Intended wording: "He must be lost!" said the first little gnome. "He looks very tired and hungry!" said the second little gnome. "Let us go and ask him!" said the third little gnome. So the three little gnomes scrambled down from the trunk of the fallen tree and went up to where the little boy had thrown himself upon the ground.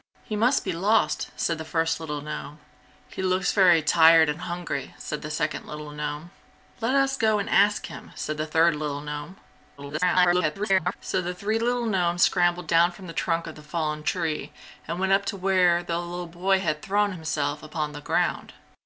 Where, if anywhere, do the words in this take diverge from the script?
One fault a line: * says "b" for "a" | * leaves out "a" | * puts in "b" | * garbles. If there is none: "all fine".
* garbles